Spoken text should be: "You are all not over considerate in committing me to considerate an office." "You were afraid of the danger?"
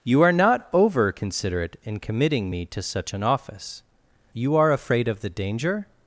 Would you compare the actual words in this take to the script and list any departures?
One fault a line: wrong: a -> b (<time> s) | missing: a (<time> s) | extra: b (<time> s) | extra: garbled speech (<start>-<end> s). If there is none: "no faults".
missing: all (0.3 s)
wrong: considerate -> such (2.8 s)
wrong: were -> are (4.6 s)